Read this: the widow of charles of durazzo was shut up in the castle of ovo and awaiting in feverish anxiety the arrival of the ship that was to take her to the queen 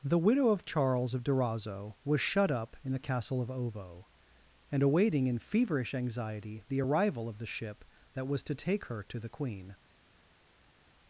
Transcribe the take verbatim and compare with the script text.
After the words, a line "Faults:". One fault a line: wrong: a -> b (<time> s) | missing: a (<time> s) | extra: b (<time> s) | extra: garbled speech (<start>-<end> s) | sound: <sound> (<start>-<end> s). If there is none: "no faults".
the widow of charles of durazzo was shut up in the castle of ovo and awaiting in feverish anxiety the arrival of the ship that was to take her to the queen
Faults:
no faults